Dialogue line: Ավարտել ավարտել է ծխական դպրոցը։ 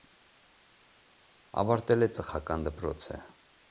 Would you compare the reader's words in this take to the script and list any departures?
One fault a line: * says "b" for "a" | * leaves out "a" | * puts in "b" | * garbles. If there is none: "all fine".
* leaves out "ավարտել"